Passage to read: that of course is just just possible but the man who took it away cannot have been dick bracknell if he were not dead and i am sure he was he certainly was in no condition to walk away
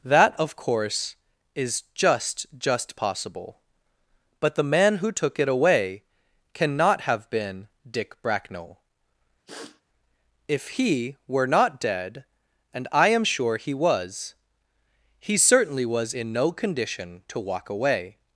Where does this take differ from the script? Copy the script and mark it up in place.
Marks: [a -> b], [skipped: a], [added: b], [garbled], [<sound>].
that of course is just just possible but the man who took it away cannot have been dick bracknell [sniff] if he were not dead and i am sure he was he certainly was in no condition to walk away